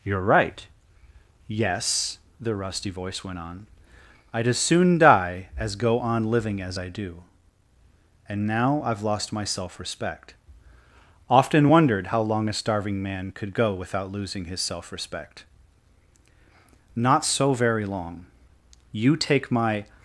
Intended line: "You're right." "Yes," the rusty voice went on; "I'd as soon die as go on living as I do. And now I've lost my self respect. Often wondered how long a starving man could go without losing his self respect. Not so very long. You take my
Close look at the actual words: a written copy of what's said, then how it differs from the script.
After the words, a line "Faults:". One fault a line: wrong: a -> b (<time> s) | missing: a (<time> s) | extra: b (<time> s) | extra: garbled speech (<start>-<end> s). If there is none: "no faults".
"You're right." "Yes," the rusty voice went on; "I'd as soon die as go on living as I do. And now I've lost my self respect. Often wondered how long a starving man could go without losing his self respect. Not so very long. You take my
Faults:
no faults